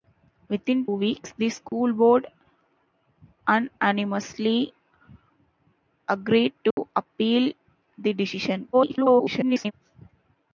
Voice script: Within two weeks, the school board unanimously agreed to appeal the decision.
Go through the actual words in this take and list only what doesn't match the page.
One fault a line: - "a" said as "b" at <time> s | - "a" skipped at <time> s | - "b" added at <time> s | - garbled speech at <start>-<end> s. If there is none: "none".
- "two" skipped at 0.9 s
- garbled speech at 8.7-9.7 s